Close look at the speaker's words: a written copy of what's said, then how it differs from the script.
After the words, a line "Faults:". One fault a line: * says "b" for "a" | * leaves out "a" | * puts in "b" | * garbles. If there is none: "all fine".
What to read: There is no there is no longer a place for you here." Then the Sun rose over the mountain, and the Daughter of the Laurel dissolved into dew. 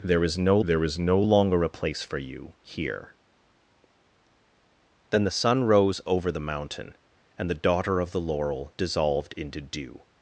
There is no there is no longer a place for you here." Then the Sun rose over the mountain, and the Daughter of the Laurel dissolved into dew.
Faults:
all fine